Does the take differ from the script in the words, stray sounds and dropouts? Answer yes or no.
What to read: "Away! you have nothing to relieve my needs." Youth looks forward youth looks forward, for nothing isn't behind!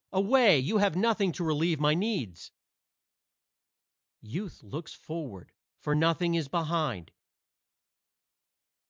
yes